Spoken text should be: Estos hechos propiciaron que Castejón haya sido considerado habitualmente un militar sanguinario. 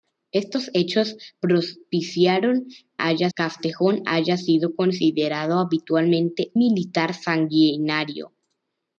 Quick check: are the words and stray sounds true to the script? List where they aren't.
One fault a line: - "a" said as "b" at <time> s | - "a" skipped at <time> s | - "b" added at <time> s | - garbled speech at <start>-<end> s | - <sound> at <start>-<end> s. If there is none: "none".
- "que" said as "haya" at 3.0 s
- "un" skipped at 6.5 s